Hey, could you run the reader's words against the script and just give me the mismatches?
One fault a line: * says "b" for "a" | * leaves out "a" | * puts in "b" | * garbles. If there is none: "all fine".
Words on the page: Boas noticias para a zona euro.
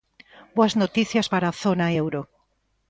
all fine